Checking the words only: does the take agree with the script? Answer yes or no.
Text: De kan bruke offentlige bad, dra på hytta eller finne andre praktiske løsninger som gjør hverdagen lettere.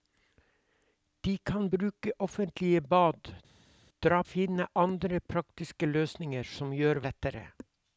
no